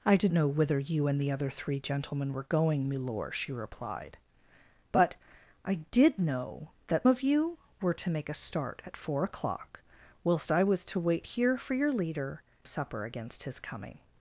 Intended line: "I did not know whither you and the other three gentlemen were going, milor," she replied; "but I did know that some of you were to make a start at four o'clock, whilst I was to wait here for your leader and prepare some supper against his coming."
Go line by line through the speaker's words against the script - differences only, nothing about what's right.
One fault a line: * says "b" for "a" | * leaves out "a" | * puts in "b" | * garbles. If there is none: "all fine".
* leaves out "not"
* leaves out "some"
* leaves out "and prepare some"